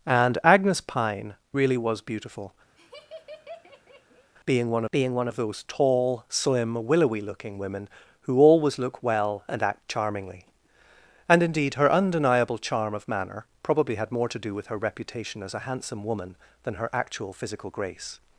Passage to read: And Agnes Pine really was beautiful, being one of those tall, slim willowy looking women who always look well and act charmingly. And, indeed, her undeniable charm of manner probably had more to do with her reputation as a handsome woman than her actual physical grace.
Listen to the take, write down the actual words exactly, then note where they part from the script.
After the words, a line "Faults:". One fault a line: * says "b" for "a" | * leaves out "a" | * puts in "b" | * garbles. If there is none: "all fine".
And Agnes Pine really was beautiful, being one being one of those tall, slim willowy looking women who always look well and act charmingly. And, indeed, her undeniable charm of manner probably had more to do with her reputation as a handsome woman than her actual physical grace.
Faults:
* puts in "being one"